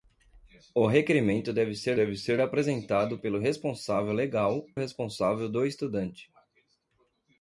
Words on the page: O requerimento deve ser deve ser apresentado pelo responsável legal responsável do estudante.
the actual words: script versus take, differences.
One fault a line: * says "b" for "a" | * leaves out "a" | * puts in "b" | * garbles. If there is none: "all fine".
all fine